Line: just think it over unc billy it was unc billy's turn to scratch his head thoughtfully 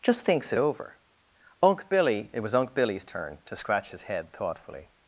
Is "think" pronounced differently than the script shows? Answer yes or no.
yes